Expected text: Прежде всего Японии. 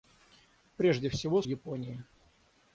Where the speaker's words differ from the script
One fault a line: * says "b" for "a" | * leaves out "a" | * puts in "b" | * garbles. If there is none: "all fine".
all fine